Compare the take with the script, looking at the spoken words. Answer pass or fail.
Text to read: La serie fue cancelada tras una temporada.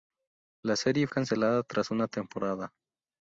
fail